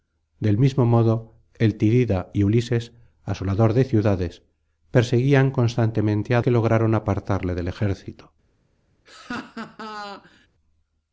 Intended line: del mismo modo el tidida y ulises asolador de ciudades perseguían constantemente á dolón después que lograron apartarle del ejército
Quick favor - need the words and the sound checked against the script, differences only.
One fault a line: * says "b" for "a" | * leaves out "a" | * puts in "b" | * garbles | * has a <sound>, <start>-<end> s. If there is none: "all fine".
* leaves out "dolón después"
* has a laugh, 9.1-10.5 s